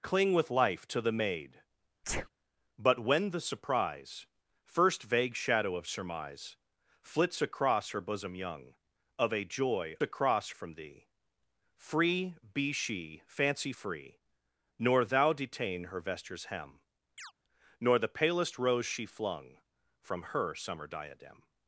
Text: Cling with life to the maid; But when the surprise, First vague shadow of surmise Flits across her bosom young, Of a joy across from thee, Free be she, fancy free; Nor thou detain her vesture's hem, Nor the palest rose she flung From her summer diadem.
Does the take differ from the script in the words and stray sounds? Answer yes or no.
yes